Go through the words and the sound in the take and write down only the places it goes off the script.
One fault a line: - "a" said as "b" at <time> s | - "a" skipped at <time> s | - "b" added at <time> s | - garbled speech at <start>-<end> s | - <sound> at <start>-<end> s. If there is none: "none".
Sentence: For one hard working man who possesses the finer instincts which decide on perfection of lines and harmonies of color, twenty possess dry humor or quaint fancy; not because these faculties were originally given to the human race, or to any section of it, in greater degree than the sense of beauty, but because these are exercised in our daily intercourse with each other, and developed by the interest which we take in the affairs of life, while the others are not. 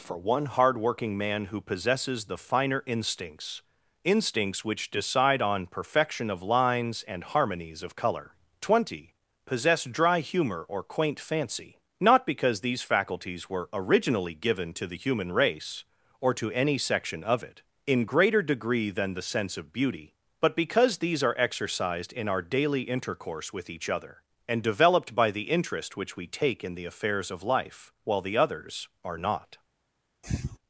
- "instincts" added at 4.0 s
- sniff at 30.2-30.6 s